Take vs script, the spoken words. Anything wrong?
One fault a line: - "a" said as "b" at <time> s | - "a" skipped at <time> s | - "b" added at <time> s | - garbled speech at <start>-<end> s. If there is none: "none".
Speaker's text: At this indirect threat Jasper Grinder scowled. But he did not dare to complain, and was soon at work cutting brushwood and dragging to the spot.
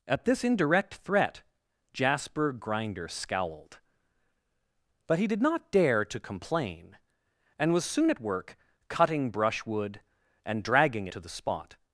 none